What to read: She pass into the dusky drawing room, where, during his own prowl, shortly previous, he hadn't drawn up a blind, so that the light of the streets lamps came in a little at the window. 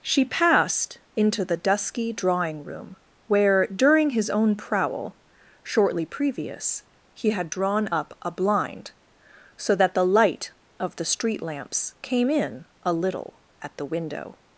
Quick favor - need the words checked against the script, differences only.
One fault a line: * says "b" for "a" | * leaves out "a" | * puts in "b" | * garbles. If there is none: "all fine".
* says "passed" for "pass"
* says "had" for "hadn't"
* says "street" for "streets"